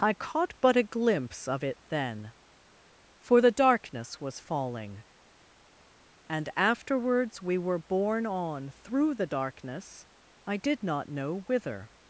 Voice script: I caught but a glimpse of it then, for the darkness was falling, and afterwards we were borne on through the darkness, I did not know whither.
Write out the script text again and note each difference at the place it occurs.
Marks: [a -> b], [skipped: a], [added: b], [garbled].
I caught but a glimpse of it then, for the darkness was falling, and afterwards we were borne on through the darkness, I did not know whither.